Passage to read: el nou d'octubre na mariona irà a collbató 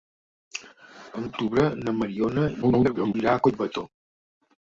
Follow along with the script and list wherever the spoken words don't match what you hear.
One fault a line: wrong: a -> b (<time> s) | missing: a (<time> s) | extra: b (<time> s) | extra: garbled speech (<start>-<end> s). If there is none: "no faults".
missing: nou (1.3 s)
extra: garbled speech (2.6-3.1 s)